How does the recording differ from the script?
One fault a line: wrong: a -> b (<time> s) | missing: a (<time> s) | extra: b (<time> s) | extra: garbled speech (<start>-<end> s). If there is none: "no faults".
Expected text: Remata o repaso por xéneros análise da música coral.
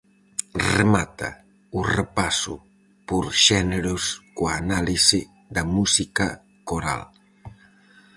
extra: coa (4.4 s)